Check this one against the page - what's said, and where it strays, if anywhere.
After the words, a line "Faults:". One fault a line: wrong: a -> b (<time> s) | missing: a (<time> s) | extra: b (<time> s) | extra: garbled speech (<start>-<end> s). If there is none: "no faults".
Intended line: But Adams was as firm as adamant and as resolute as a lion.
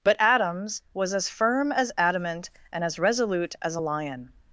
But Adams was as firm as adamant and as resolute as a lion.
Faults:
no faults